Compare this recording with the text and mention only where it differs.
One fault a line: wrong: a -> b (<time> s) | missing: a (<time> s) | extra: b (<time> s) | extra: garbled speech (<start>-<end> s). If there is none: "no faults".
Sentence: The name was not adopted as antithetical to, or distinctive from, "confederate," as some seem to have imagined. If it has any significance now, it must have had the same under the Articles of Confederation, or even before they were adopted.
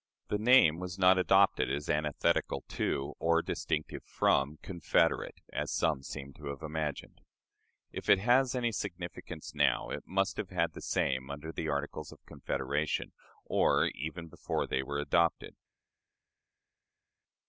no faults